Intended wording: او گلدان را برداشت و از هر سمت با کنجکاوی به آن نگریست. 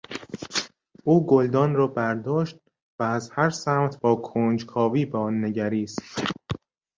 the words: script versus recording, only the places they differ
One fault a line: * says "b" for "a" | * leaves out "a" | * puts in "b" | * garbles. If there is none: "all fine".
all fine